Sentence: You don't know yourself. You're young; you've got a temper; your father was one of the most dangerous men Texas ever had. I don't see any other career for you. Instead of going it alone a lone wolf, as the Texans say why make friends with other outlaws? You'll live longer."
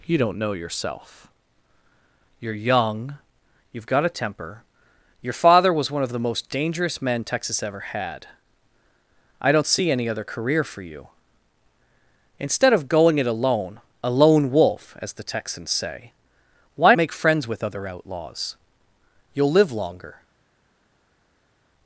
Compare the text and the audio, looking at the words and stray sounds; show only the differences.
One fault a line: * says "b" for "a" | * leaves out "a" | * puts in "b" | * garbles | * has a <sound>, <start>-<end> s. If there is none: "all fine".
all fine